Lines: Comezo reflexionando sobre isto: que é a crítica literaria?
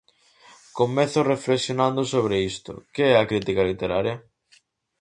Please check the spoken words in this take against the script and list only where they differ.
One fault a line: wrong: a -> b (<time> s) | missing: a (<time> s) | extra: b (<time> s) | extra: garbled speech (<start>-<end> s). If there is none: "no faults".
no faults